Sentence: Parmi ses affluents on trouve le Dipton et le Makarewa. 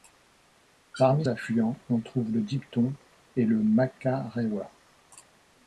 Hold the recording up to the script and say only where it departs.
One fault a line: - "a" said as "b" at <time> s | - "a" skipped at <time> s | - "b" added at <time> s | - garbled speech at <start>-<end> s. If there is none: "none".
- "ses" skipped at 1.3 s